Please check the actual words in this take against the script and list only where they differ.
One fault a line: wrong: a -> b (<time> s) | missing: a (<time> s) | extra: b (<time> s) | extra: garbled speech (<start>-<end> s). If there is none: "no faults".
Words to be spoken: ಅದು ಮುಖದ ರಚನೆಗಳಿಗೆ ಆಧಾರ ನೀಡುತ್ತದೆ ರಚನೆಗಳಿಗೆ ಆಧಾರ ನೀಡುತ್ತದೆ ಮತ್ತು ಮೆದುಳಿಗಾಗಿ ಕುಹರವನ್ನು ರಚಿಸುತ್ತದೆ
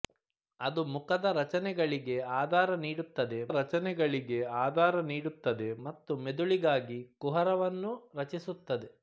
no faults